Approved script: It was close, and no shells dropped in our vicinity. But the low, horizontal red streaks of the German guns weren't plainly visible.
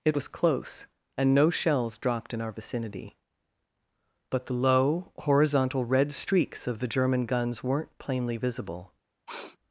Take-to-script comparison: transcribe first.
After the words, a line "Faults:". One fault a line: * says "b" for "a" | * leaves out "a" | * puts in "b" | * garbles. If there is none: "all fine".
It was close, and no shells dropped in our vicinity. But the low, horizontal red streaks of the German guns weren't plainly visible.
Faults:
all fine